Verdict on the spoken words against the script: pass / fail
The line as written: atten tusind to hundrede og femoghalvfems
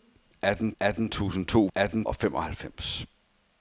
fail